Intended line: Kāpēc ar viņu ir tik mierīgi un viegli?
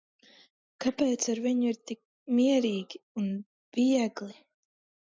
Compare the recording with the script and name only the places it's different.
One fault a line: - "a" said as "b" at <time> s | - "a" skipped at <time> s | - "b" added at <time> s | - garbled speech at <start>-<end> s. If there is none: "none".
none